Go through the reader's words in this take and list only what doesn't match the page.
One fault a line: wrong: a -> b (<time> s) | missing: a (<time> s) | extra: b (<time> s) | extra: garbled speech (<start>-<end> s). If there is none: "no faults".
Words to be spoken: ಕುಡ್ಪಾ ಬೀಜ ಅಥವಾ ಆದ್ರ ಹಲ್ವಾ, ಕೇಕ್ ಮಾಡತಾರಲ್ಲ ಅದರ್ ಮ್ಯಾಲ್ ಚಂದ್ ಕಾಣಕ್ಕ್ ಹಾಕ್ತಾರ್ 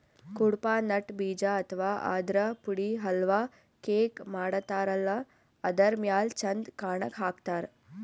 extra: ನಟ್ (0.8 s)
extra: ಪುಡಿ (2.6 s)